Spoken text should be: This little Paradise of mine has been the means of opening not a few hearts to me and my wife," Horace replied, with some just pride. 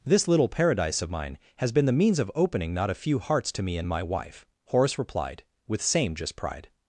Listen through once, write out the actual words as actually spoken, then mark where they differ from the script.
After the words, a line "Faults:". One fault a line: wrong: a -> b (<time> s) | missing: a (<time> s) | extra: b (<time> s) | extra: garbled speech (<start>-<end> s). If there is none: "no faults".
This little Paradise of mine has been the means of opening not a few hearts to me and my wife," Horace replied, with same just pride.
Faults:
wrong: some -> same (5.8 s)